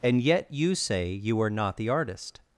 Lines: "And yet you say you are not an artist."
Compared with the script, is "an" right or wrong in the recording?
wrong